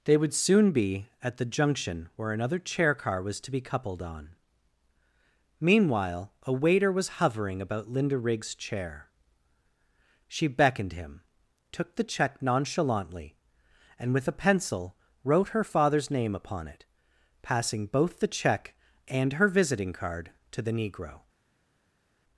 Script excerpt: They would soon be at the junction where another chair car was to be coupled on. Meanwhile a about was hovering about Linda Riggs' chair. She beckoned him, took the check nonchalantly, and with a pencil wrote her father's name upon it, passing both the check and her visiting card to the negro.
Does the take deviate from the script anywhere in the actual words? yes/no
yes